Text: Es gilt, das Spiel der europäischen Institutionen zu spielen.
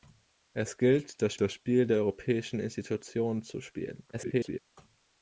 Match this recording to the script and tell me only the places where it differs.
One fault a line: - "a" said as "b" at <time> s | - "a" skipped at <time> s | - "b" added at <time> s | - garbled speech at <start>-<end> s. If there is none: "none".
- "das" added at 1.4 s
- garbled speech at 4.1-4.6 s